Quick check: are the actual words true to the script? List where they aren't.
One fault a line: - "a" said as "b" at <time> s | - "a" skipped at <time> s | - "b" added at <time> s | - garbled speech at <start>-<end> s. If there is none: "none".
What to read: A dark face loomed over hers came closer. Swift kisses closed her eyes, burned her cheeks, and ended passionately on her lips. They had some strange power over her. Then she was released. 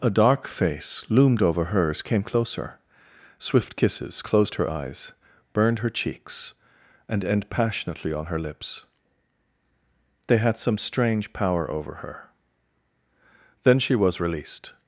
- "ended" said as "end" at 7.2 s